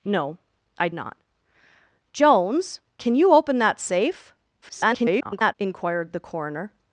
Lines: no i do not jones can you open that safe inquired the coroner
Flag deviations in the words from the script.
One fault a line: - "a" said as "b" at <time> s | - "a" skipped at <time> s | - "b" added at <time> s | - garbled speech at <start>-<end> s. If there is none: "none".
- "do" skipped at 0.9 s
- garbled speech at 4.6-5.5 s